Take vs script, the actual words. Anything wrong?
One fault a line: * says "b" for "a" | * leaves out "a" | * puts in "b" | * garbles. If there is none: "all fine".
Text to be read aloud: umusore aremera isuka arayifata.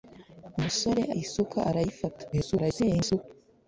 * leaves out "aremera"
* garbles